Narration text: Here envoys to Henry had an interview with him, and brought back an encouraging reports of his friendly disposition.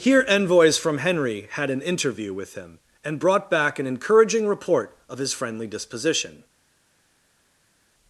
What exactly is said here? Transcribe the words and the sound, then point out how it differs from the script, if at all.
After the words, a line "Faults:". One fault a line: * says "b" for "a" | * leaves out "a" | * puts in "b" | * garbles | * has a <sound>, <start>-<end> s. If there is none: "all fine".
Here envoys from Henry had an interview with him, and brought back an encouraging report of his friendly disposition.
Faults:
* says "from" for "to"
* says "report" for "reports"